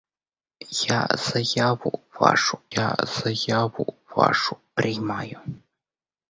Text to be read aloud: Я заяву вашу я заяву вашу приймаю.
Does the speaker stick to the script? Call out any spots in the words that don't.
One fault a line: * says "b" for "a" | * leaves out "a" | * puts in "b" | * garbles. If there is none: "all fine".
all fine